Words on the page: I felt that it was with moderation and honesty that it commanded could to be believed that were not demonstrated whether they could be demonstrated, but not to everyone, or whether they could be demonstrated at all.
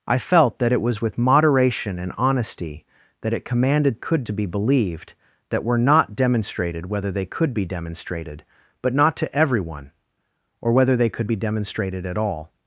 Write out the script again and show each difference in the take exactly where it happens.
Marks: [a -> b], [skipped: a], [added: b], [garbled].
I felt that it was with moderation and honesty that it commanded could to be believed that were not demonstrated whether they could be demonstrated, but not to everyone, or whether they could be demonstrated at all.